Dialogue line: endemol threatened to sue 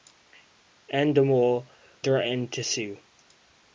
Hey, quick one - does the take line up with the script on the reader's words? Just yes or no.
yes